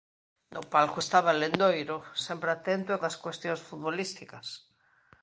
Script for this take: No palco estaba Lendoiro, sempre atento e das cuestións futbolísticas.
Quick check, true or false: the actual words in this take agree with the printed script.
true